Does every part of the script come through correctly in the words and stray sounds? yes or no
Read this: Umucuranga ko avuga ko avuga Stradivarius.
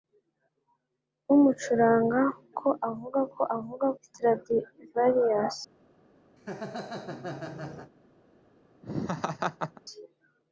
no